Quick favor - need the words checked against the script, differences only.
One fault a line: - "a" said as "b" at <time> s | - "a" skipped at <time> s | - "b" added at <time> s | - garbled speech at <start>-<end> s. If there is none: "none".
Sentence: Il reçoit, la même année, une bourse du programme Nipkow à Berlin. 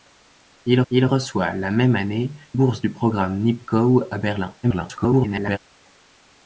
- "il" added at 0.9 s
- "une" skipped at 2.3 s
- garbled speech at 4.6-5.6 s